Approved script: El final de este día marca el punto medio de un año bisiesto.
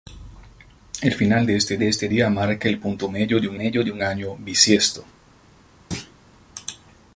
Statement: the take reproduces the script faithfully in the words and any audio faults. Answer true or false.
false